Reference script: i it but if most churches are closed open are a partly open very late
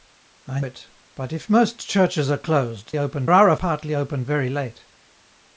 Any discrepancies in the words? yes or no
no